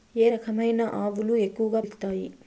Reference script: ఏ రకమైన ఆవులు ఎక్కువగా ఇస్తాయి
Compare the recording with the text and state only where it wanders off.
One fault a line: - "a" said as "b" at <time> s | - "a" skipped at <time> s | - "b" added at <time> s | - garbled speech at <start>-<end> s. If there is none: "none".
none